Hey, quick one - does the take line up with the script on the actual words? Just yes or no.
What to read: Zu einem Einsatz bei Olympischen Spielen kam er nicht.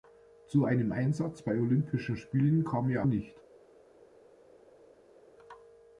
yes